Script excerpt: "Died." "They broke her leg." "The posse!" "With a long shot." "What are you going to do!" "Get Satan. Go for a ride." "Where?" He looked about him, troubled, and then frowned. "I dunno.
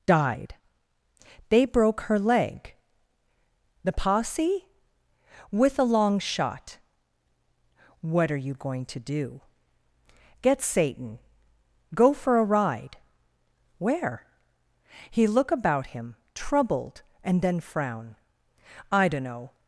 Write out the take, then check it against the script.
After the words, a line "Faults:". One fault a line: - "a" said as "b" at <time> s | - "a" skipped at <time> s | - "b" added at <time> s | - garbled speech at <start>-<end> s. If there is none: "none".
"Died." "They broke her leg." "The posse!" "With a long shot." "What are you going to do!" "Get Satan. Go for a ride." "Where?" He look about him, troubled, and then frown. "I dunno.
Faults:
- "looked" said as "look" at 15.3 s
- "frowned" said as "frown" at 17.6 s